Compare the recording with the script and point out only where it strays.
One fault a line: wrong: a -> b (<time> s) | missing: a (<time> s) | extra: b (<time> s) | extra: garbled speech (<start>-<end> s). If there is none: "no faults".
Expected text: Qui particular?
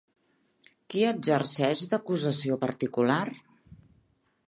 extra: exerceix d'acusació (1.1 s)